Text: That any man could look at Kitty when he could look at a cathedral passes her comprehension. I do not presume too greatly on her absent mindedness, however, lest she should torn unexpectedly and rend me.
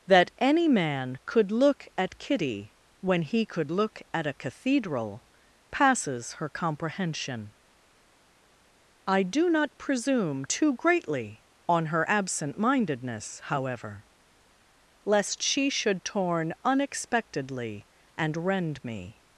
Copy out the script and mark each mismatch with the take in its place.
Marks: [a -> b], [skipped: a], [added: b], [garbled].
That any man could look at Kitty when he could look at a cathedral passes her comprehension. I do not presume too greatly on her absent mindedness, however, lest she should torn unexpectedly and rend me.